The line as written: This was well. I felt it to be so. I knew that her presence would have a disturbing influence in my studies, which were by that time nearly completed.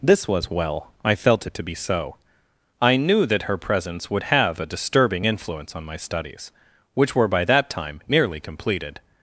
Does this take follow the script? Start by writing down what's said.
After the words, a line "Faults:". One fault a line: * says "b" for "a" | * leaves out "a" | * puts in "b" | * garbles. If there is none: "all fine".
This was well. I felt it to be so. I knew that her presence would have a disturbing influence on my studies, which were by that time nearly completed.
Faults:
* says "on" for "in"